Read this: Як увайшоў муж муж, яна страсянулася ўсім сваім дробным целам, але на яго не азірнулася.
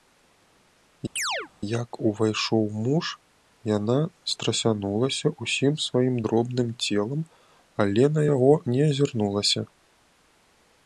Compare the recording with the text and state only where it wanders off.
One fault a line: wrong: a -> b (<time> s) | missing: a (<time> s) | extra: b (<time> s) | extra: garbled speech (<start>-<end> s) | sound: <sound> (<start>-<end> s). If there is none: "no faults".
sound: chirp (1.2-1.5 s)
missing: муж (3.0 s)